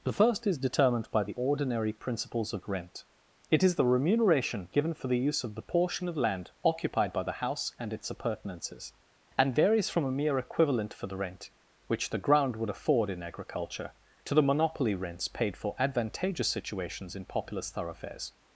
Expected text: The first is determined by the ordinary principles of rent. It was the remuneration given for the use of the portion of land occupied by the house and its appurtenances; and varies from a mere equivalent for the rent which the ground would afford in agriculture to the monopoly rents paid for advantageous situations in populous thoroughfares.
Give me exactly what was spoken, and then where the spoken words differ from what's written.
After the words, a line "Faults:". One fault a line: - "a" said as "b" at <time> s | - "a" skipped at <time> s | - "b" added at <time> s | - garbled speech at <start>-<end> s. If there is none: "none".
The first is determined by the ordinary principles of rent. It is the remuneration given for the use of the portion of land occupied by the house and its appurtenances; and varies from a mere equivalent for the rent which the ground would afford in agriculture to the monopoly rents paid for advantageous situations in populous thoroughfares.
Faults:
- "was" said as "is" at 3.6 s